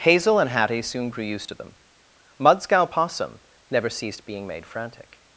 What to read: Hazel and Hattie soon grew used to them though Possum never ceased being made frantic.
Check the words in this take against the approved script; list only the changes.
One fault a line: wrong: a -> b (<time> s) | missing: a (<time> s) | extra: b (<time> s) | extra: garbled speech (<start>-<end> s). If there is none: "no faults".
wrong: though -> mudscow (2.4 s)